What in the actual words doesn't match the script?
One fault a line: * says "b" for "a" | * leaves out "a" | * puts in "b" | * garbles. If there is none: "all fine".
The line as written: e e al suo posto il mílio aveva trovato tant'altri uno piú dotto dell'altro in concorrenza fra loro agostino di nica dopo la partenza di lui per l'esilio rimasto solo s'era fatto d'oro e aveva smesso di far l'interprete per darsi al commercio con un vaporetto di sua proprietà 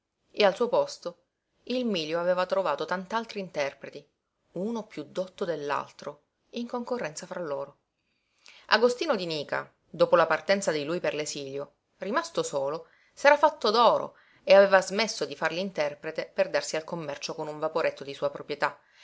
* leaves out "e"
* puts in "interpreti"